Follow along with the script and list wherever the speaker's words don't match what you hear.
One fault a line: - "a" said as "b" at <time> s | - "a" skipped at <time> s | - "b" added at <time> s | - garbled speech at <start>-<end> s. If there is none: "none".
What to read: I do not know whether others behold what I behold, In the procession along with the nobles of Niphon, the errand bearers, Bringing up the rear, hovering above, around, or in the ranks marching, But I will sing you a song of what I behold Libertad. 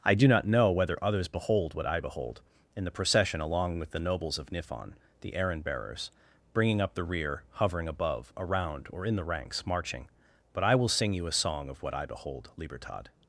none